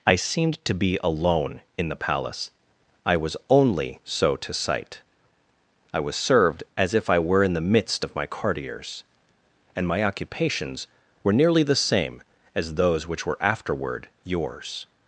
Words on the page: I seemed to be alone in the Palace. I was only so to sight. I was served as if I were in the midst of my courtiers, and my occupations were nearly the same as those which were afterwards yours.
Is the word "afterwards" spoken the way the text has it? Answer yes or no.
no